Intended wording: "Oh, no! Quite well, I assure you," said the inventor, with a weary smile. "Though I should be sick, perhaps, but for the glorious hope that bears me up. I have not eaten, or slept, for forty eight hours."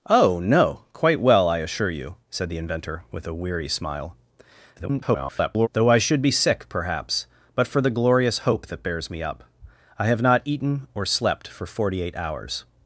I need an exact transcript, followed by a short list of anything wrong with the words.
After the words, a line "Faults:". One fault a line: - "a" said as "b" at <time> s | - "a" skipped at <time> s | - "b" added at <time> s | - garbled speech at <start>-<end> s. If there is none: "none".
"Oh, no! Quite well, I assure you," said the inventor, with a weary smile. [garbled] "Though I should be sick, perhaps, but for the glorious hope that bears me up. I have not eaten, or slept, for forty eight hours."
Faults:
- garbled speech at 4.8-5.7 s